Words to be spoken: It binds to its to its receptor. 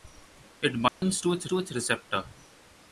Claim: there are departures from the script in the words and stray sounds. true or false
true